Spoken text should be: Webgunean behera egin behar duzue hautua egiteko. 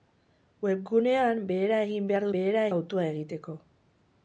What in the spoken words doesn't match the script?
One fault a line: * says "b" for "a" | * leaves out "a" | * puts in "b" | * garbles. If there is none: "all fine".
* says "behera" for "duzue"